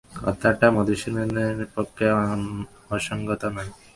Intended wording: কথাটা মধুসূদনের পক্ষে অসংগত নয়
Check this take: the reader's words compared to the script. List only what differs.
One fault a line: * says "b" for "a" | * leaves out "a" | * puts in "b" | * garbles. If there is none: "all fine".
all fine